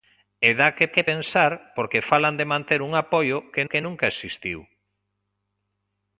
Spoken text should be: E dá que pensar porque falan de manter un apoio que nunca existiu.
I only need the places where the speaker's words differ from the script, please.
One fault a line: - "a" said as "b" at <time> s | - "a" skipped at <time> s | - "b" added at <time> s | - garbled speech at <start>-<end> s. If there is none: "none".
- "que" added at 0.9 s
- "que" added at 3.7 s